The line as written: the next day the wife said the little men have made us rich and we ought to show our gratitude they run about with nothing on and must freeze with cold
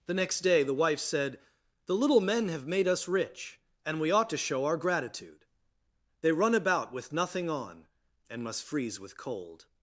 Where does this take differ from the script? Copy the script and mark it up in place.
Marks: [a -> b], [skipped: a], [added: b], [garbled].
the next day the wife said the little men have made us rich and we ought to show our gratitude they run about with nothing on and must freeze with cold